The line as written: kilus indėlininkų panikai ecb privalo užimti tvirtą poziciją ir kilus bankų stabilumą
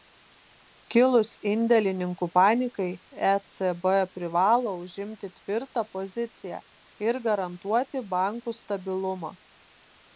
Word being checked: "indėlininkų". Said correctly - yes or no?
yes